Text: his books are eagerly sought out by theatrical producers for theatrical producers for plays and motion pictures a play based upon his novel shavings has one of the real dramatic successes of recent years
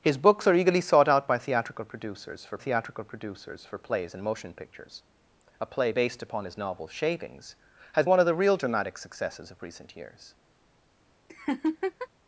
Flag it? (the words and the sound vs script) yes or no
yes